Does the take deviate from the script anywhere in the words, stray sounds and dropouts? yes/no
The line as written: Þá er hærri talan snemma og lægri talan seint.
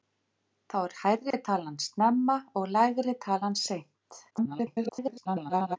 yes